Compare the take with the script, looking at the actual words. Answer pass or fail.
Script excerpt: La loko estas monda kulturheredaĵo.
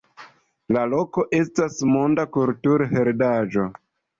pass